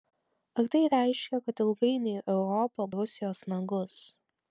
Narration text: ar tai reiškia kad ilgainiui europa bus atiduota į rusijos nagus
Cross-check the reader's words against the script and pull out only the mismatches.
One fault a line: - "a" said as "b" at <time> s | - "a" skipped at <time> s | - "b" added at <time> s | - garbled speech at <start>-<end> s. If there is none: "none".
- "bus atiduota" skipped at 2.9 s